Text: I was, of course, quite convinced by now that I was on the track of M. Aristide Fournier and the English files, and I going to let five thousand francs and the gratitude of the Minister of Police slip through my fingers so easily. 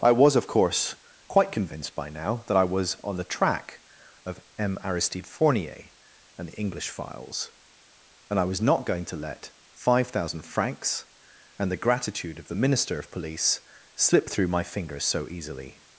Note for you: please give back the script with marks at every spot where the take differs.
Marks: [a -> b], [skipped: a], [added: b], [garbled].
I was, of course, quite convinced by now that I was on the track of M. Aristide Fournier and the English files, and I [added: was not] going to let five thousand francs and the gratitude of the Minister of Police slip through my fingers so easily.